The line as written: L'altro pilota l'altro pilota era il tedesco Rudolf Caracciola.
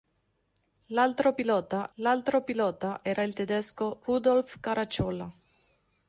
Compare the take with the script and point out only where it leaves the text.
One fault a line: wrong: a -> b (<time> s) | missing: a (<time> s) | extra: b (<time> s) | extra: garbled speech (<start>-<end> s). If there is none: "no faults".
no faults